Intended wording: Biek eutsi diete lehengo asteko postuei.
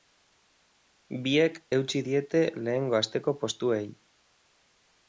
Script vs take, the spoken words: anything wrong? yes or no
no